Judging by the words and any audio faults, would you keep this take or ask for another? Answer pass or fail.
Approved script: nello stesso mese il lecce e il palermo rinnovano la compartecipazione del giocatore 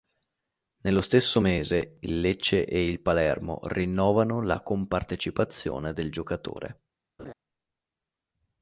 fail